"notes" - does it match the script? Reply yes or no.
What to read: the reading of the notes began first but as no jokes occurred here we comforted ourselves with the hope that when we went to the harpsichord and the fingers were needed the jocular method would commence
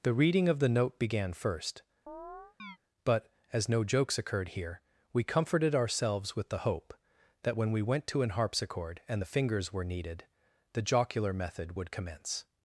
no